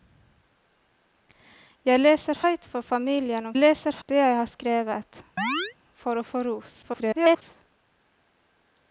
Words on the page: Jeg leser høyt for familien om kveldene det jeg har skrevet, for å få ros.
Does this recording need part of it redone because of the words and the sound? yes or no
yes